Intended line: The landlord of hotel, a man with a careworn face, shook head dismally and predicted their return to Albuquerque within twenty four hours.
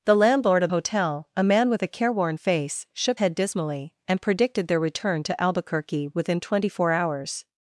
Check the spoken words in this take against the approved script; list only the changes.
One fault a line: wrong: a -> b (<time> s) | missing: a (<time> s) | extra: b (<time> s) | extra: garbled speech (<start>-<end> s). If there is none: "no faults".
no faults